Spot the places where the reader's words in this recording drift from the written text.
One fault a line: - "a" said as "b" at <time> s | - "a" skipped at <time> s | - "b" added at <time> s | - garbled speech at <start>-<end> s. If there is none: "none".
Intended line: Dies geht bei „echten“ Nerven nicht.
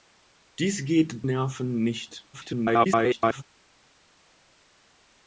- "bei echten" skipped at 1.2 s
- garbled speech at 2.3-3.4 s